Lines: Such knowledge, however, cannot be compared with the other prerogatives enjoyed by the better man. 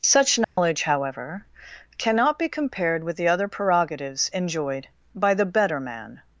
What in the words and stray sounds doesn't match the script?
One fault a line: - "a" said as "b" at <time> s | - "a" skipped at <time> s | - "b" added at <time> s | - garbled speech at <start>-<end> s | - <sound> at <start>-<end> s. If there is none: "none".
- dropout at 0.4-0.6 s